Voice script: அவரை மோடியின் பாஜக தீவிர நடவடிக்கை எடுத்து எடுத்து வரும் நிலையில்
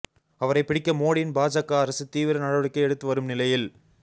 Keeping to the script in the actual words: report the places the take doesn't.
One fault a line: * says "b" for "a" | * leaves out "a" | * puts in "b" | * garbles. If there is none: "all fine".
* puts in "பிடிக்க"
* puts in "அரசு"
* leaves out "எடுத்து"